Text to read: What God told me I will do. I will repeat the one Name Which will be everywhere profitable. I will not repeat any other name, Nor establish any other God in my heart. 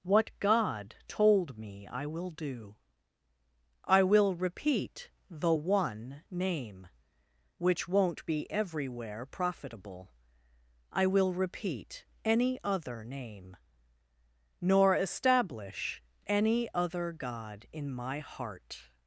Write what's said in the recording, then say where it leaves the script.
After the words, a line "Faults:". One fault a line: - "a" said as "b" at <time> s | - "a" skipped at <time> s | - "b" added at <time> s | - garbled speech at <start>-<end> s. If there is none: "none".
What God told me I will do. I will repeat the one Name Which won't be everywhere profitable. I will repeat any other name, Nor establish any other God in my heart.
Faults:
- "will" said as "won't" at 7.9 s
- "not" skipped at 11.3 s